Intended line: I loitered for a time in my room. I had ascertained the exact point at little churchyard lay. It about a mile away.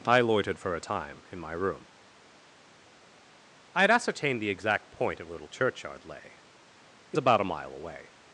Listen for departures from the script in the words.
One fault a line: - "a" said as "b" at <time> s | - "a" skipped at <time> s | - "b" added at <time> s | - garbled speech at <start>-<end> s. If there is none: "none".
none